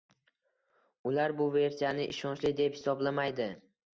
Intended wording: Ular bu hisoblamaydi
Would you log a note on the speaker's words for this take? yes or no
yes